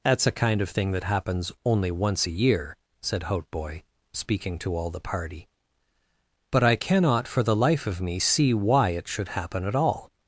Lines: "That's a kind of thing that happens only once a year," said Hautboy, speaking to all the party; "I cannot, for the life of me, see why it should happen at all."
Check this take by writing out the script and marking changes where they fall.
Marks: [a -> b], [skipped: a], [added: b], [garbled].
"That's a kind of thing that happens only once a year," said Hautboy, speaking to all the party; [added: but] "I cannot, for the life of me, see why it should happen at all."